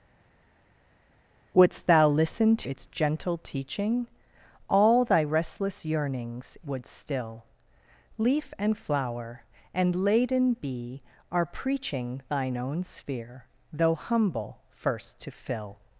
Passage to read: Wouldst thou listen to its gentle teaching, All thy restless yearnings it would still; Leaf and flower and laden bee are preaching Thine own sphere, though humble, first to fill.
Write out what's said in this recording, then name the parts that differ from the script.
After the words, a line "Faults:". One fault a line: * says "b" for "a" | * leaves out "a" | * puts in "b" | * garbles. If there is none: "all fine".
Wouldst thou listen its gentle teaching, All thy restless yearnings would still; Leaf and flower and laden bee are preaching Thine own sphere, though humble, first to fill.
Faults:
* leaves out "to"
* leaves out "it"